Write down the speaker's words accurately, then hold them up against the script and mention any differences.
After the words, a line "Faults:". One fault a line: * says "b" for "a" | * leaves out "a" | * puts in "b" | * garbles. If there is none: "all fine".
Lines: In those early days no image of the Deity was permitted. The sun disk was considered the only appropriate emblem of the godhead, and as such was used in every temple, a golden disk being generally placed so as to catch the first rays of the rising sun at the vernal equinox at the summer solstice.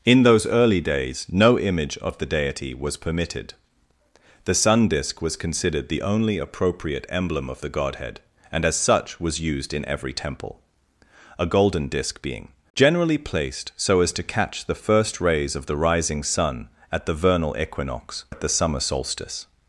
In those early days no image of the Deity was permitted. The sun disk was considered the only appropriate emblem of the godhead, and as such was used in every temple, a golden disk being generally placed so as to catch the first rays of the rising sun at the vernal equinox at the summer solstice.
Faults:
all fine